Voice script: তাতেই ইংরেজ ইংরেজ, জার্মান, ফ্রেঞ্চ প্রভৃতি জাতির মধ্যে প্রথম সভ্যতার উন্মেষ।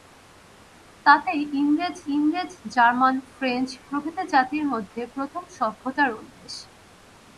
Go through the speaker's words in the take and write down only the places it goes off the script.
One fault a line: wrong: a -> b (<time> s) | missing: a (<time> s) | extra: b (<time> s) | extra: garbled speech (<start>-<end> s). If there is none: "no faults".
no faults